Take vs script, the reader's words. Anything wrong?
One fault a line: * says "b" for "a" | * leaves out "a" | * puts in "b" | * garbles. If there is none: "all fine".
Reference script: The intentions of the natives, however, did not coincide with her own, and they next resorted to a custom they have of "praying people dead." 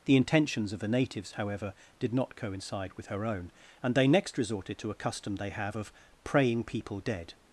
all fine